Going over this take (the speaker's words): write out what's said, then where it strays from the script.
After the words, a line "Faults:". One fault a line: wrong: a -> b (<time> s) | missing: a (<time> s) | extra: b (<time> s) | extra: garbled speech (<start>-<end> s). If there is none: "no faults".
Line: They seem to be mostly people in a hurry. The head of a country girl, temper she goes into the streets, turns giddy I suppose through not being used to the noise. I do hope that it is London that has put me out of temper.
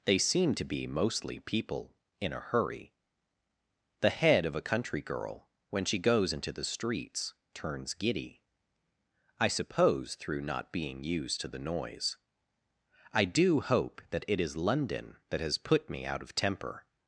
They seem to be mostly people in a hurry. The head of a country girl, when she goes into the streets, turns giddy I suppose through not being used to the noise. I do hope that it is London that has put me out of temper.
Faults:
wrong: temper -> when (5.7 s)